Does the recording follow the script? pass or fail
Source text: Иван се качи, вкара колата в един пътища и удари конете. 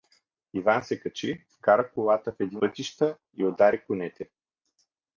pass